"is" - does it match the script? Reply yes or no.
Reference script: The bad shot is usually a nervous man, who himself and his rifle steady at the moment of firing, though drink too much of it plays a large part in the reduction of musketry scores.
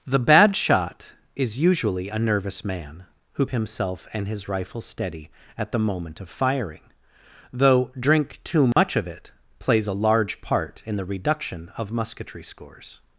yes